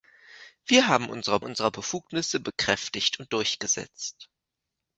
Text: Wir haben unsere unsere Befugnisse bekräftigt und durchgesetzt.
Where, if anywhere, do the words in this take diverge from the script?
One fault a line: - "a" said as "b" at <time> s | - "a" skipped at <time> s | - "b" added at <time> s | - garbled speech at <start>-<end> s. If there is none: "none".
none